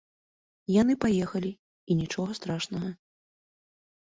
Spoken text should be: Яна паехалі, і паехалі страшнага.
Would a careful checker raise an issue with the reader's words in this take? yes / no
yes